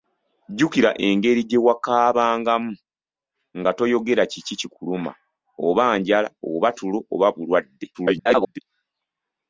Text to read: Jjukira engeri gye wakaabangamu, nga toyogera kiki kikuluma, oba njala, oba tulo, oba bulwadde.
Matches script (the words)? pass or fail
fail